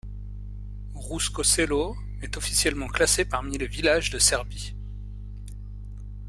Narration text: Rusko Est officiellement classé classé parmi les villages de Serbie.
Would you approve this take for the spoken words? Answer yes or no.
no